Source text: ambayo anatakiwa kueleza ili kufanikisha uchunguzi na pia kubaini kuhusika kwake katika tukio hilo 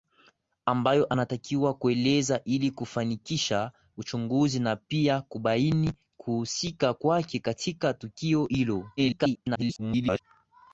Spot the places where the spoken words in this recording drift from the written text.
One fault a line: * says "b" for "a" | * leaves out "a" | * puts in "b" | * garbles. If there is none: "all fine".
* garbles